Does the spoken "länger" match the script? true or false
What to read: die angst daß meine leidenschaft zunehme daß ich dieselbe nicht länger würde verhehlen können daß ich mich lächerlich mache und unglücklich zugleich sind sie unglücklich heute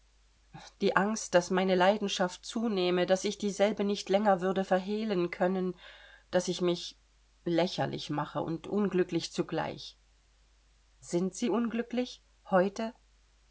true